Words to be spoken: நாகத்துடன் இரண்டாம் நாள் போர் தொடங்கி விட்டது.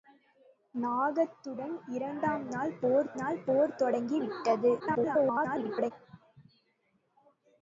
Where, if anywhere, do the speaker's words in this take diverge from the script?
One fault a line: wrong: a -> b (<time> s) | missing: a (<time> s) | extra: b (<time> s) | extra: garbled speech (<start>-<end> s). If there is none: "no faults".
extra: நாள் போர் (3.1 s)
extra: garbled speech (4.8-5.9 s)